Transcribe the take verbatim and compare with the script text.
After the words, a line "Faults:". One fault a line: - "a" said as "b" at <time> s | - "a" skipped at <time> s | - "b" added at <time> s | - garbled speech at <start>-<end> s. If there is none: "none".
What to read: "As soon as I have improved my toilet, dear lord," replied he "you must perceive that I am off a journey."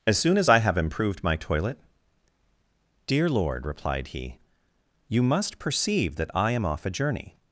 "As soon as I have improved my toilet, dear lord," replied he "you must perceive that I am off a journey."
Faults:
none